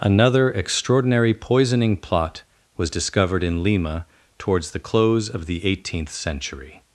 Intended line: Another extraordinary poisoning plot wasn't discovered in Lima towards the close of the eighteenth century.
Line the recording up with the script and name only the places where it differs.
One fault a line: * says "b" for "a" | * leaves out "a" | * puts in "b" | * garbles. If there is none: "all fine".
* says "was" for "wasn't"